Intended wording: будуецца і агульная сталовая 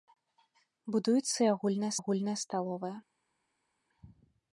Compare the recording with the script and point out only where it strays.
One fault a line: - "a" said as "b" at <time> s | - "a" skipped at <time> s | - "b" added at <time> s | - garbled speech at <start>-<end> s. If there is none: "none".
- "агульная" added at 2.0 s